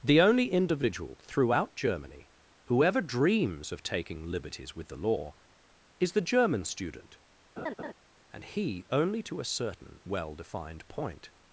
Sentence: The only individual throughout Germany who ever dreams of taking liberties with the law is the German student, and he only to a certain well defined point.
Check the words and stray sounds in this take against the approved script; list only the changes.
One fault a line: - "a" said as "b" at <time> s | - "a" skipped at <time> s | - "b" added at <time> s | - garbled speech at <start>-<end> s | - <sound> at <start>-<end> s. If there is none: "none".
- laugh at 7.6-7.9 s